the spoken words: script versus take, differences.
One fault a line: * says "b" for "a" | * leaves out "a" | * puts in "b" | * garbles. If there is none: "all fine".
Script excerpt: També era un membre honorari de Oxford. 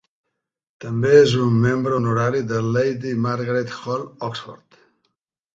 * says "és" for "era"
* puts in "Lady Margaret Hall"